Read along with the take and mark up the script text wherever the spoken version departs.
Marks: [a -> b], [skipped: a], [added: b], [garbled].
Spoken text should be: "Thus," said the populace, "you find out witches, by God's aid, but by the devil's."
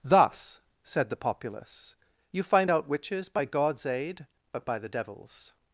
"Thus," said the populace, "you find out witches, by God's aid, but by the devil's."